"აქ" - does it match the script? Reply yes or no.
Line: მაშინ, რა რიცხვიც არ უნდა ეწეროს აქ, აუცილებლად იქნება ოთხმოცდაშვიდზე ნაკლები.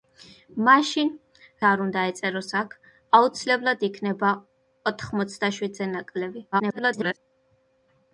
yes